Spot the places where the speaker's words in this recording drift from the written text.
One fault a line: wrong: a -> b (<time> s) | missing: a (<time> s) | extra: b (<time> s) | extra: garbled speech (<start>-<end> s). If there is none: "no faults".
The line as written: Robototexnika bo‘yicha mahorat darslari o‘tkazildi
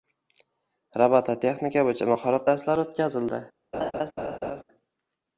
no faults